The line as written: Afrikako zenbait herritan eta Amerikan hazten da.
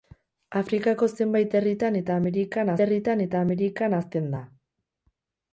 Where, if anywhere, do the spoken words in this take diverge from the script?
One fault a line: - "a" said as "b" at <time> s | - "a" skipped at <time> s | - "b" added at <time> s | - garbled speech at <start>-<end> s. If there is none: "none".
- "herritan eta Amerikan" added at 2.8 s